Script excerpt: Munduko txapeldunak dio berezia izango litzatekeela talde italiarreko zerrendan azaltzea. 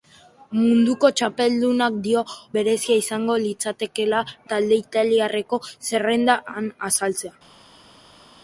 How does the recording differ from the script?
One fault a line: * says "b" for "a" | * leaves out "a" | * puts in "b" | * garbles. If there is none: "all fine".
all fine